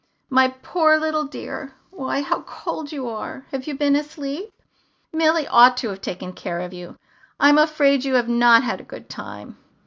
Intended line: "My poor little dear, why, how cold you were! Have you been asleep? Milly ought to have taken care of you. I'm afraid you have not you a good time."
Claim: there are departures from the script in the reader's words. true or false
true